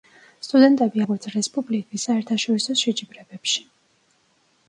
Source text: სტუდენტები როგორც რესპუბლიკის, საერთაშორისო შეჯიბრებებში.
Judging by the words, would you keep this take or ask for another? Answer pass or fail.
pass